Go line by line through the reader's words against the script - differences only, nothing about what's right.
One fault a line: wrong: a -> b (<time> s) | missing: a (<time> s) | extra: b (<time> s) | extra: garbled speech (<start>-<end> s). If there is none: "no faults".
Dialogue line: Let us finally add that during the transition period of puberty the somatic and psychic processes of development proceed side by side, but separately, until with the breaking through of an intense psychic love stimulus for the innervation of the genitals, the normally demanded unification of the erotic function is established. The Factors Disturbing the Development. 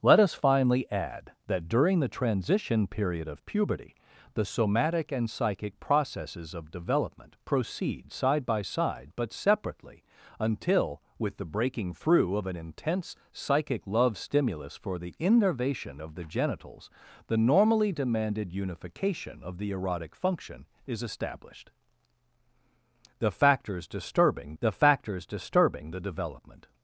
extra: Factors Disturbing the (24.7 s)